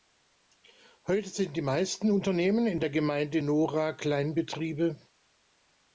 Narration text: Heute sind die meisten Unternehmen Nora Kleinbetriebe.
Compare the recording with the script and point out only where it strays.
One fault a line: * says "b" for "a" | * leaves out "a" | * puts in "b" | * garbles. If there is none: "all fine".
* puts in "in der Gemeinde"